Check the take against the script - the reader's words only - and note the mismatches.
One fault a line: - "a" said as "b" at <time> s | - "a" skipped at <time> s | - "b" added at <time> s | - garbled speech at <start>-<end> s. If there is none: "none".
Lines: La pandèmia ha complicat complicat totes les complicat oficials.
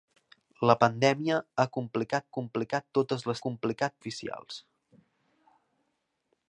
none